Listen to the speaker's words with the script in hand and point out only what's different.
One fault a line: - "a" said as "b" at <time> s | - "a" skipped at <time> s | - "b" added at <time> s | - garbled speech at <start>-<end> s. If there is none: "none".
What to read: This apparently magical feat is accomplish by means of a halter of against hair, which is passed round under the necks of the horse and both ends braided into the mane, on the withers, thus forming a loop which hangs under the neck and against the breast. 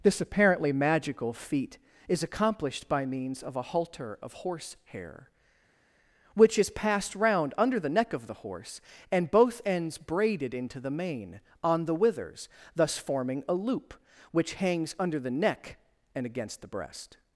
- "accomplish" said as "accomplished" at 2.2 s
- "against" said as "horse" at 4.3 s
- "necks" said as "neck" at 7.9 s